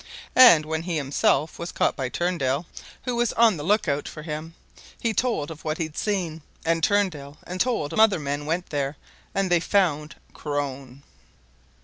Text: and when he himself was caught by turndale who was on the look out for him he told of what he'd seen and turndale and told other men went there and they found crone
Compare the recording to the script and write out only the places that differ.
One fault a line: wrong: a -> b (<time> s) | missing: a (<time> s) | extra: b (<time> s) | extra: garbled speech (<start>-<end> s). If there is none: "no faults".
no faults